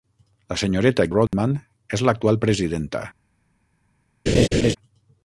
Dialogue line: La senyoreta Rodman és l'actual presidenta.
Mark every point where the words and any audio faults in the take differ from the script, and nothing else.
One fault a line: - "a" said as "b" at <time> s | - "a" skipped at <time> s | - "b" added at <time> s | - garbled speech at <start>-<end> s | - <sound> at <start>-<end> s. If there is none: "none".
- dropout at 1.3-1.3 s
- laugh at 4.3-4.8 s